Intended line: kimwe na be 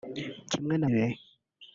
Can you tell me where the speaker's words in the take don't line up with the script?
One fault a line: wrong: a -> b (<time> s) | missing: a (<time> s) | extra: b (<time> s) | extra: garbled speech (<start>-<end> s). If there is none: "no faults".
no faults